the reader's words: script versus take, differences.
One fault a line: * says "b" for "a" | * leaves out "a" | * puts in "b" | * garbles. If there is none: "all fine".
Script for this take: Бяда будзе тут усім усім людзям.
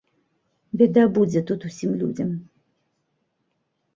* leaves out "усім"